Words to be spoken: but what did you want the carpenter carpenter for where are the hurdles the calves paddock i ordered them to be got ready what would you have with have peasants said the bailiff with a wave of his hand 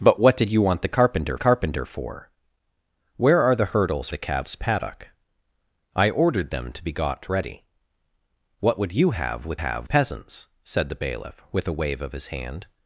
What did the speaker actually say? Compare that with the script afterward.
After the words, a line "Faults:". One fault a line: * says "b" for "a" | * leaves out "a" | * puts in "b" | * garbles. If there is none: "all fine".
but what did you want the carpenter carpenter for where are the hurdles the calves paddock i ordered them to be got ready what would you have with have peasants said the bailiff with a wave of his hand
Faults:
all fine